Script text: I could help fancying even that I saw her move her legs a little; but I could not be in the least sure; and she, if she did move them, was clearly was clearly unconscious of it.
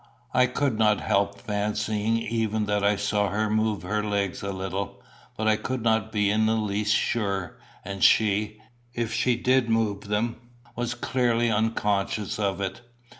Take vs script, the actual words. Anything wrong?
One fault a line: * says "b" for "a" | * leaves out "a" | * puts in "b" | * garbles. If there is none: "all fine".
* puts in "not"
* leaves out "was clearly"